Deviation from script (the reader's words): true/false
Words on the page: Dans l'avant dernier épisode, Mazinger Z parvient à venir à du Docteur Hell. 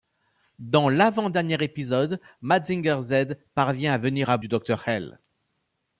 false